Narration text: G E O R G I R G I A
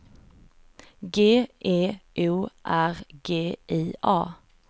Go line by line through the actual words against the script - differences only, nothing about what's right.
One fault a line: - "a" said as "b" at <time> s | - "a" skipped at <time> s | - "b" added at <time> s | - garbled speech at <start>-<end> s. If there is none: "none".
- "R G I" skipped at 3.9 s